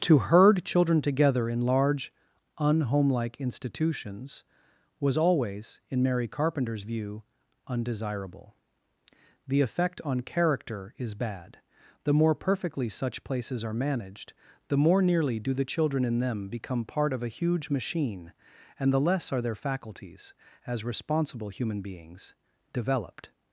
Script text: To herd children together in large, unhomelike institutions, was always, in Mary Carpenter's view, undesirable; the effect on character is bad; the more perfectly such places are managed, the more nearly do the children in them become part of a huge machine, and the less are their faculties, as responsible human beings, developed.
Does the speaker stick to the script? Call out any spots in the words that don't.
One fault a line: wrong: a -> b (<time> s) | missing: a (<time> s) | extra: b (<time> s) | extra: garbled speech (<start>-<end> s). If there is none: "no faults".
no faults